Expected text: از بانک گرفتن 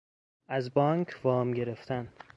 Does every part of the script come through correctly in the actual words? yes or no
no